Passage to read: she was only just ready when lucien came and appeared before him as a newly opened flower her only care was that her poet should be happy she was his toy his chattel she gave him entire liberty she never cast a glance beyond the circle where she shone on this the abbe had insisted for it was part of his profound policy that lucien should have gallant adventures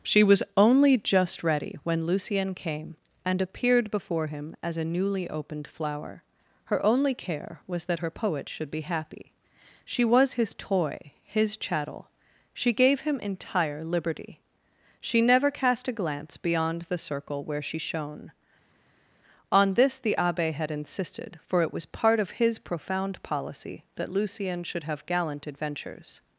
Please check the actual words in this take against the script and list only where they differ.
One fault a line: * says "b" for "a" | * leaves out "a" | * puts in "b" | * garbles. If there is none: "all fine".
all fine